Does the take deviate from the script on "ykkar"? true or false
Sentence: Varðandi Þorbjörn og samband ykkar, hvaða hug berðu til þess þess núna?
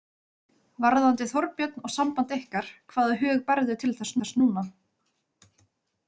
false